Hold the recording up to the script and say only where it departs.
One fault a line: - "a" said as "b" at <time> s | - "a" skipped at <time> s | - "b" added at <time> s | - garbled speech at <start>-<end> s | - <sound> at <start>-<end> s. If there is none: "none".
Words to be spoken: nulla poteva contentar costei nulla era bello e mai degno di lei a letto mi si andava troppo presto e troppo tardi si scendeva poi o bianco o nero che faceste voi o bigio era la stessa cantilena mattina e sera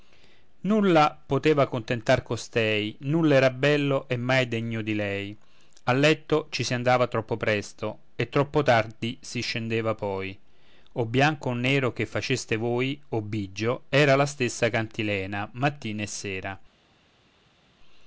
- "mi" said as "ci" at 6.5 s